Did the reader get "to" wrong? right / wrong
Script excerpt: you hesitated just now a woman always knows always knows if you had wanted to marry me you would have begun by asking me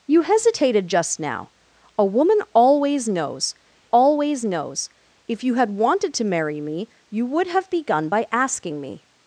right